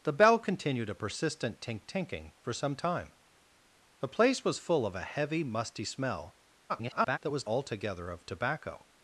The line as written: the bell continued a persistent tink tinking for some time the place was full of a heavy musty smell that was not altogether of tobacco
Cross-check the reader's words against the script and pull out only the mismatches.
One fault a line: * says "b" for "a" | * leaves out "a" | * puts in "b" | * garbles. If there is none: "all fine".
* garbles
* leaves out "not"